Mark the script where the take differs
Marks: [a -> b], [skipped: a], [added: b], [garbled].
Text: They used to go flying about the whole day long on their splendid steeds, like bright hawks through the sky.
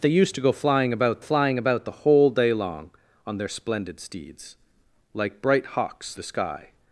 They used to go flying about [added: flying about] the whole day long on their splendid steeds, like bright hawks [skipped: through] the sky.